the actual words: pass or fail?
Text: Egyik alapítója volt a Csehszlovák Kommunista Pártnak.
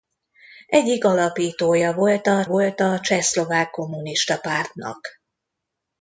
fail